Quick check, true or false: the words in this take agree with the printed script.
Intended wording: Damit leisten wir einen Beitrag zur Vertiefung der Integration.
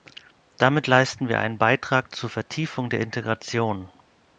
true